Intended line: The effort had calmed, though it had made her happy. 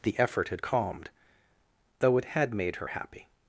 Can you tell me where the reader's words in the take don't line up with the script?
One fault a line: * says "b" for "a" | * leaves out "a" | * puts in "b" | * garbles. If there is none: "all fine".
all fine